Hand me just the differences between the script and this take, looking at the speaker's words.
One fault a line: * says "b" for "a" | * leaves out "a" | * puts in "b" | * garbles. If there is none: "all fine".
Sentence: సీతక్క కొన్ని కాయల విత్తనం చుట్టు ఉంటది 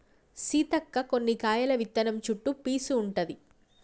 * puts in "పీసు"